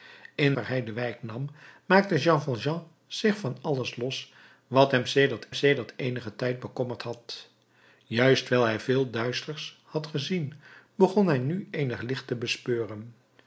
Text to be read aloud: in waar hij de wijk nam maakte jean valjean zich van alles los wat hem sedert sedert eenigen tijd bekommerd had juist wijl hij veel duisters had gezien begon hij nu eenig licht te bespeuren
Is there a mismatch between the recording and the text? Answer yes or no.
no